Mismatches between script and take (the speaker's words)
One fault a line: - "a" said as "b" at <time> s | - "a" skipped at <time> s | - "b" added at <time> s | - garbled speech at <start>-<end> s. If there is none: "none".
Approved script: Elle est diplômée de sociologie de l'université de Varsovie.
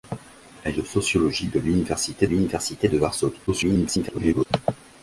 - "est diplômée" skipped at 0.8 s
- "l'université" added at 2.2 s
- garbled speech at 3.5-4.5 s